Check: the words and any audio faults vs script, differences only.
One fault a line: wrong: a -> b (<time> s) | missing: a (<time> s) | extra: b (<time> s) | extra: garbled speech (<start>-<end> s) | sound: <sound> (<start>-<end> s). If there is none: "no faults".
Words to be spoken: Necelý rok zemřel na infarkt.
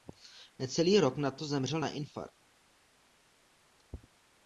extra: nato (1.2 s)